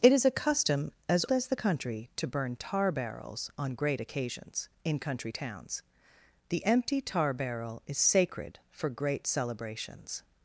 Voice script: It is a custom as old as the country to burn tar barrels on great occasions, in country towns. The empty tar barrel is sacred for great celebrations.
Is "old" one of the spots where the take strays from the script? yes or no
yes